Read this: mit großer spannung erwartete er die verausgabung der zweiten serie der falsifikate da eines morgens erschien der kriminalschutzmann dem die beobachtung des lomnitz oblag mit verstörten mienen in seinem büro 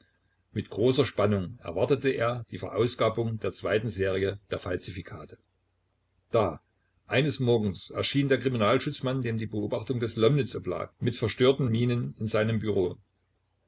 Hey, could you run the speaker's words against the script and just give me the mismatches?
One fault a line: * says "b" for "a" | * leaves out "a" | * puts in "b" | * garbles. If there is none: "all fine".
all fine